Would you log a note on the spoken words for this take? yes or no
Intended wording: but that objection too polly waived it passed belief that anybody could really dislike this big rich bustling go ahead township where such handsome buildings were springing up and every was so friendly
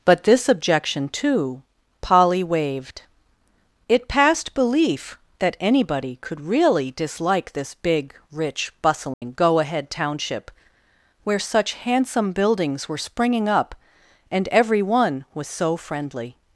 yes